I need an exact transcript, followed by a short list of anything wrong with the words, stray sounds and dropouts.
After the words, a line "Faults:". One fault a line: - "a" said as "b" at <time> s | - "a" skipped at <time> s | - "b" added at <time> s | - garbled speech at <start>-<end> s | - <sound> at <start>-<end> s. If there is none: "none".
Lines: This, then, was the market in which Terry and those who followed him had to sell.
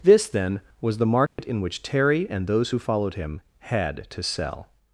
This, then, was the market in which Terry and those who followed him had to sell.
Faults:
- dropout at 1.3-1.4 s